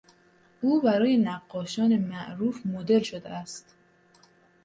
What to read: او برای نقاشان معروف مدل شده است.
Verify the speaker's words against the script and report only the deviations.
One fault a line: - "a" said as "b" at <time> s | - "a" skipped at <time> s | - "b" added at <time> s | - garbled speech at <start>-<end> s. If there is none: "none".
none